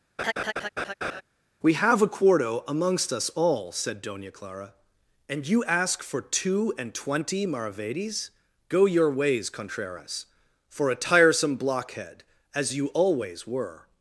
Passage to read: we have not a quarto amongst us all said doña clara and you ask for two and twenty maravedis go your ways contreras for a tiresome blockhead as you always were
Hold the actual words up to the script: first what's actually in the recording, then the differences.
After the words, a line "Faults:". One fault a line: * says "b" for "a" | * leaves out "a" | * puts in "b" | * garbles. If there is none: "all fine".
we have a quarto amongst us all said doña clara and you ask for two and twenty maravedis go your ways contreras for a tiresome blockhead as you always were
Faults:
* leaves out "not"